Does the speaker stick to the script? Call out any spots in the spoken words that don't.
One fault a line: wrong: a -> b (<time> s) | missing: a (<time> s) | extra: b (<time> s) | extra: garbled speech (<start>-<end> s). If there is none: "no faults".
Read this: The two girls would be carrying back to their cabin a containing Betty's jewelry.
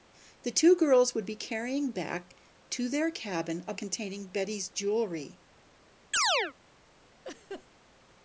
no faults